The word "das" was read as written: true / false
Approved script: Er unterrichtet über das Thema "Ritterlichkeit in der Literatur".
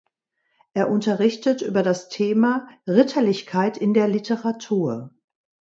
true